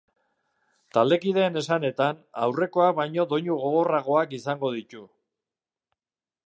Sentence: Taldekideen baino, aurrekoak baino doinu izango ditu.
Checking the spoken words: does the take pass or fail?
fail